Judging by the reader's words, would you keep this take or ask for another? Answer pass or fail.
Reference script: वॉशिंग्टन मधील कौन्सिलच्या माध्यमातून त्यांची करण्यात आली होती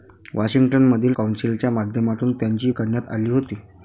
pass